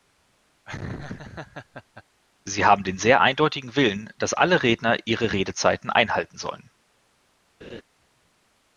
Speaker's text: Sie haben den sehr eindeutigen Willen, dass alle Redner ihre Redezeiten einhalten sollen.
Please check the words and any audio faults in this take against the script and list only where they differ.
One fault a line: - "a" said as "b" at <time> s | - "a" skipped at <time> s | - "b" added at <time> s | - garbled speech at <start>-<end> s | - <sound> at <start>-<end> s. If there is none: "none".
- laugh at 0.7-2.0 s
- laugh at 7.6-7.8 s